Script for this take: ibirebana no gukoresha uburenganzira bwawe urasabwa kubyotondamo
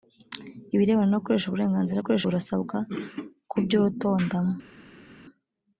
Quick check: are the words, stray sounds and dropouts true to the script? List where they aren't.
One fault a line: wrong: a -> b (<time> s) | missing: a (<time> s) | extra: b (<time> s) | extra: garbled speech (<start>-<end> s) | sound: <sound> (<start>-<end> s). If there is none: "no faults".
wrong: bwawe -> gukoresha (2.0 s)